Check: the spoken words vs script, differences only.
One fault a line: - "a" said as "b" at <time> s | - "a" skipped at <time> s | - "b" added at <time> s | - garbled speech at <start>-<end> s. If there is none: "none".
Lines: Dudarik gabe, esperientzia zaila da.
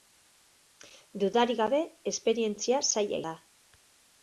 none